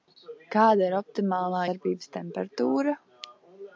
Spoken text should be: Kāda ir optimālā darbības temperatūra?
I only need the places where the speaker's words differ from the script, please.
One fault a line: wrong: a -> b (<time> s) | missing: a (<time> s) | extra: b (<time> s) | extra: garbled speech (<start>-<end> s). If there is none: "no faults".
no faults